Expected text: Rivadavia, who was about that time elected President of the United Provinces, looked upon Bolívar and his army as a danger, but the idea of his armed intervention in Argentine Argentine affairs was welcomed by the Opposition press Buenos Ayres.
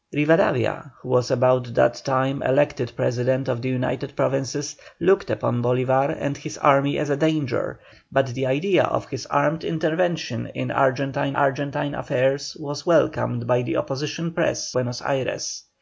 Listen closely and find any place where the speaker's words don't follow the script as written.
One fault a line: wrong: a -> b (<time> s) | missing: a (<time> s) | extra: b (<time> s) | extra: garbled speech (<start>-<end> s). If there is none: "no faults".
no faults